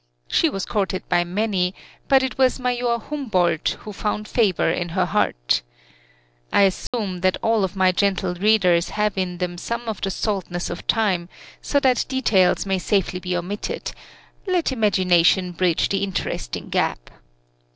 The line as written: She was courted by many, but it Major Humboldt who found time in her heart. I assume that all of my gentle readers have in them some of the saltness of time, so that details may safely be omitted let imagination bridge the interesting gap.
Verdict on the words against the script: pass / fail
fail